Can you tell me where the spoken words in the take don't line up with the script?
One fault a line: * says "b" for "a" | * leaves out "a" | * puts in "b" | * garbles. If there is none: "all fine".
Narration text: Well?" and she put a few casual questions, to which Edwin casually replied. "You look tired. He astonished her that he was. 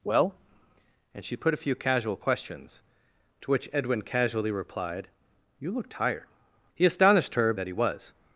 all fine